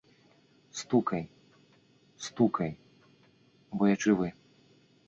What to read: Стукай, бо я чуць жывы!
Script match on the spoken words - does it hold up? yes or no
no